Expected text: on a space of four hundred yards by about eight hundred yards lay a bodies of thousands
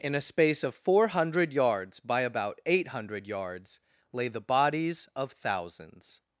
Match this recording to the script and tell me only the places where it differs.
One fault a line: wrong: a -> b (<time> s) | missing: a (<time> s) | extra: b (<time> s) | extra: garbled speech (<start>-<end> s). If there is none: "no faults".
wrong: on -> in (0.0 s)
wrong: a -> the (4.3 s)